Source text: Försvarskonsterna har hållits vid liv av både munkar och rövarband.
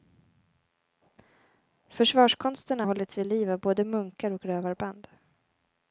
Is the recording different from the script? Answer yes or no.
yes